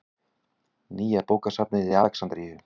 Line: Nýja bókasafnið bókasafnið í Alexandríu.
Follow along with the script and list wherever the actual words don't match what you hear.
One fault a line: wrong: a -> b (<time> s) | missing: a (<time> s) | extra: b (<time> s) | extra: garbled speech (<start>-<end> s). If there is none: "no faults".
missing: bókasafnið (1.9 s)